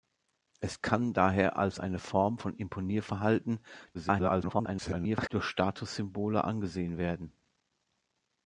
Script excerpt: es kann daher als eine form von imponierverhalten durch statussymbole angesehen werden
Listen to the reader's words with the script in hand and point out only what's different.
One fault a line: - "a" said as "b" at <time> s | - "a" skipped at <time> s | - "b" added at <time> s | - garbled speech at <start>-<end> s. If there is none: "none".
- garbled speech at 3.9-5.3 s